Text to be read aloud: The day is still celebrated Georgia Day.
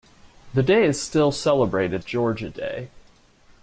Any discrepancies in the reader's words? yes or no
no